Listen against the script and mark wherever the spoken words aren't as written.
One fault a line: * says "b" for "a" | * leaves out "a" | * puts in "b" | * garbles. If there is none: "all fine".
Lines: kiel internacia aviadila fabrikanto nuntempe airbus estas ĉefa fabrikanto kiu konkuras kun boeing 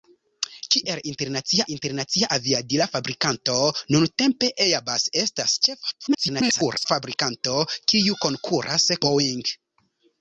* puts in "internacia"
* garbles
* leaves out "kun"